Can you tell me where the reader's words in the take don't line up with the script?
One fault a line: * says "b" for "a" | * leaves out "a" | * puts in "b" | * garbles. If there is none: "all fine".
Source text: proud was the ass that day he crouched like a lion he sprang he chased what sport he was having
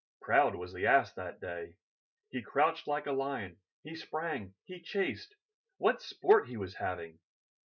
all fine